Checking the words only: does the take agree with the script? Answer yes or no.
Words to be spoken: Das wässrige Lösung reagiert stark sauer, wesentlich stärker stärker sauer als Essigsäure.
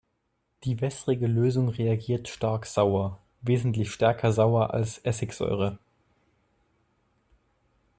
no